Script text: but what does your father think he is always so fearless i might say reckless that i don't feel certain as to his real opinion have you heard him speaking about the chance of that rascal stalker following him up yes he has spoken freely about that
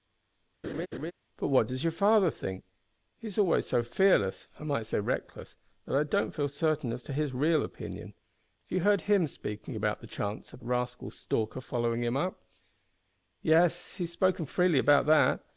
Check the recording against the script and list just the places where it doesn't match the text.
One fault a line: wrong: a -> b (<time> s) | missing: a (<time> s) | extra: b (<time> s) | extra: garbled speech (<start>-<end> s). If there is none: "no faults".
missing: that (10.6 s)